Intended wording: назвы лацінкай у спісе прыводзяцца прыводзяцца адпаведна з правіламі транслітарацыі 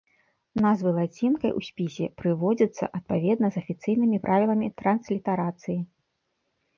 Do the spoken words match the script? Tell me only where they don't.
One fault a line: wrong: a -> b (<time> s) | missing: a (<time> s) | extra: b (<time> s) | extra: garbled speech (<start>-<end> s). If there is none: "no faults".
missing: прыводзяцца (2.9 s)
extra: афіцыйнымі (3.6 s)